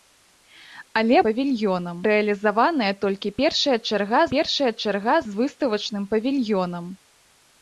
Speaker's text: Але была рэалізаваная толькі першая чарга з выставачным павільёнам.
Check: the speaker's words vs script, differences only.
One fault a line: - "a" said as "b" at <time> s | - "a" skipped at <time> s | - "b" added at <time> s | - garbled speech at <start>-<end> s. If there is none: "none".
- "была" said as "павільёнам" at 1.2 s
- "першая чарга" added at 4.3 s